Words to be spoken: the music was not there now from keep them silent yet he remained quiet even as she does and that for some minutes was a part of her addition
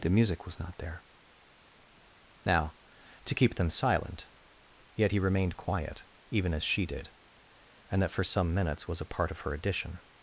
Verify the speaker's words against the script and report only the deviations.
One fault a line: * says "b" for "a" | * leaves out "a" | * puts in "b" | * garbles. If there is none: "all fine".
* says "to" for "from"
* says "did" for "does"